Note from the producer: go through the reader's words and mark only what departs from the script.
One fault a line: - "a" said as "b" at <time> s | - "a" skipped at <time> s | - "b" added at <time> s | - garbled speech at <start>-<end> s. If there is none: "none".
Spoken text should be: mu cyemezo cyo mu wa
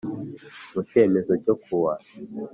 - "mu" said as "ku" at 1.6 s